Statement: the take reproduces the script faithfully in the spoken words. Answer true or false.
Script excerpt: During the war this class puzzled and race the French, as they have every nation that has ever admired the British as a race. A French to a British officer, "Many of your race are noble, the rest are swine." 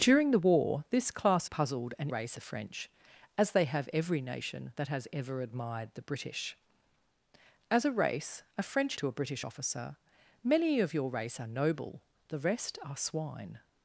true